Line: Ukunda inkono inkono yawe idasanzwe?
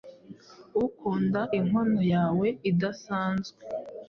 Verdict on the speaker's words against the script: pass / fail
fail